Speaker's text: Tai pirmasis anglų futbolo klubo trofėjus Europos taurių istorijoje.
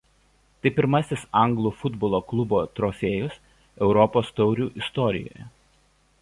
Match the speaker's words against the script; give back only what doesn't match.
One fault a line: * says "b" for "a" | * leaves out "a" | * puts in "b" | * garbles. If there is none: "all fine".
all fine